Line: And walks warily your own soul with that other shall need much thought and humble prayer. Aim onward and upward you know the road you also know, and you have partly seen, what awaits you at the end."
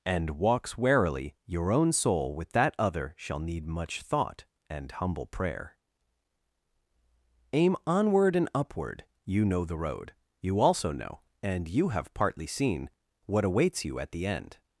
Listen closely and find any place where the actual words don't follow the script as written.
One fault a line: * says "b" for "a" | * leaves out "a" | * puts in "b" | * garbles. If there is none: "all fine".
all fine